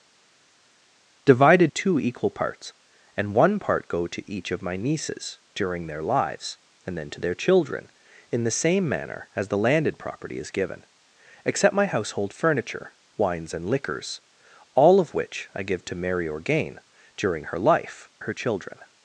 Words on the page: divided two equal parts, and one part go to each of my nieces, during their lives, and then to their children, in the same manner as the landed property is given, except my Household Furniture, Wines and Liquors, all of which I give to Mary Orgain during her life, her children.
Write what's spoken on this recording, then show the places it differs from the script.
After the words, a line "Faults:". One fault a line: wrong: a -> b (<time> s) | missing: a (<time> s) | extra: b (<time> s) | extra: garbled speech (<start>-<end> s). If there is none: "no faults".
divided two equal parts, and one part go to each of my nieces, during their lives, and then to their children, in the same manner as the landed property is given, except my Household Furniture, Wines and Liquors, all of which I give to Mary Orgain during her life, her children.
Faults:
no faults